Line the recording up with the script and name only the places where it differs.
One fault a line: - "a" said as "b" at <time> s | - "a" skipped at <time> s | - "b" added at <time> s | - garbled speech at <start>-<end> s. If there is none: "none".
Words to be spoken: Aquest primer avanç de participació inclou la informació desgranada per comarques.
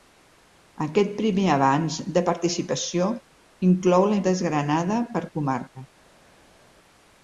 - "informació" skipped at 4.2 s